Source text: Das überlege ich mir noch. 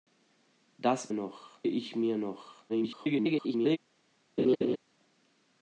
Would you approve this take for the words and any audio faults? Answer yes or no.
no